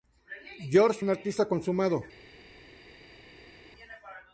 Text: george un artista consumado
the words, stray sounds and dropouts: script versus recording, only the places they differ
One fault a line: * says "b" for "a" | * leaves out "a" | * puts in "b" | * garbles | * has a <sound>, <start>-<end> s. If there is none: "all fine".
all fine